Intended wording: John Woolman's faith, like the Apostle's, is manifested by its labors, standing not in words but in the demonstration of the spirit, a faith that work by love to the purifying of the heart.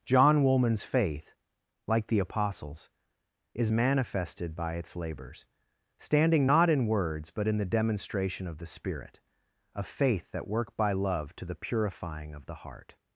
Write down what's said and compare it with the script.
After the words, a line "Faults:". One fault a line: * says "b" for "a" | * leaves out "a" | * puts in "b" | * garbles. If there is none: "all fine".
John Woolman's faith, like the Apostle's, is manifested by its labors, standing not in words but in the demonstration of the spirit, a faith that work by love to the purifying of the heart.
Faults:
all fine